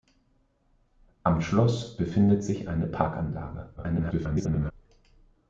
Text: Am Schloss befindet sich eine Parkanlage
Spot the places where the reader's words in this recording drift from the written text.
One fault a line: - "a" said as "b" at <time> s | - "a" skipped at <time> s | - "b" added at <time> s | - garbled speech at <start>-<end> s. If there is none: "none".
- garbled speech at 3.8-4.7 s